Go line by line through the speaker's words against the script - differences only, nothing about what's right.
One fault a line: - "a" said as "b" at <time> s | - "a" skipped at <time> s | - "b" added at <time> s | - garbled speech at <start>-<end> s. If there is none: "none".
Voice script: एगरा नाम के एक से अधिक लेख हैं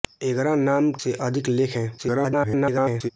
- "के एक" skipped at 0.9 s
- garbled speech at 2.0-3.1 s